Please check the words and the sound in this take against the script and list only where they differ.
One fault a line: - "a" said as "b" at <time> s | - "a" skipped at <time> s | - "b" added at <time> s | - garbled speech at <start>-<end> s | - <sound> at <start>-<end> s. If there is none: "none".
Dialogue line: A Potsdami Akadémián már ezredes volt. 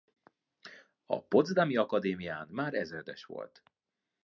none